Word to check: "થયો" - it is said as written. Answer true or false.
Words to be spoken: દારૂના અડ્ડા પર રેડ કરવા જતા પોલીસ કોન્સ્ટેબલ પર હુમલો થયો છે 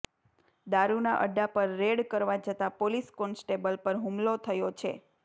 true